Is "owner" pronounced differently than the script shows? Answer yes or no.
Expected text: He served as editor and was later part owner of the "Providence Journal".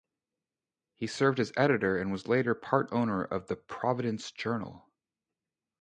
no